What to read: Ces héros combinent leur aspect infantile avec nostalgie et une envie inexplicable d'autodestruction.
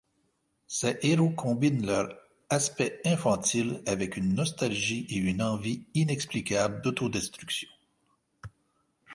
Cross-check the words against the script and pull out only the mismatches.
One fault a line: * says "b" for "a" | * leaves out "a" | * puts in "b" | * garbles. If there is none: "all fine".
* puts in "une"